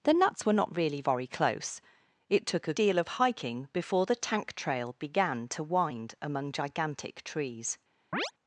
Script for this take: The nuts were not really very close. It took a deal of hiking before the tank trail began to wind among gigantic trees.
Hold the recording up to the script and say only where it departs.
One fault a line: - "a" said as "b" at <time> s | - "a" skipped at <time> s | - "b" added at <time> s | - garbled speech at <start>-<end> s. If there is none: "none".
none